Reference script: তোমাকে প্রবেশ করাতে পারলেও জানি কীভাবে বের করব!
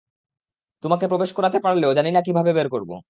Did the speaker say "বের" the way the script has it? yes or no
yes